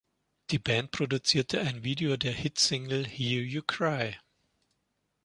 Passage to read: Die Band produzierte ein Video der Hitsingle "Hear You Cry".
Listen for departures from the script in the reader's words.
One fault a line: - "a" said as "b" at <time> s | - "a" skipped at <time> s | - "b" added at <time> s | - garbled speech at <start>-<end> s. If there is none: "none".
none